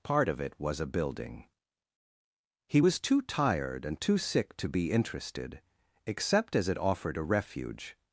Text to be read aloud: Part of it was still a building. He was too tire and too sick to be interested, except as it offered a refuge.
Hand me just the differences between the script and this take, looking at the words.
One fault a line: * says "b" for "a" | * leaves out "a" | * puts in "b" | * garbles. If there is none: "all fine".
* leaves out "still"
* says "tired" for "tire"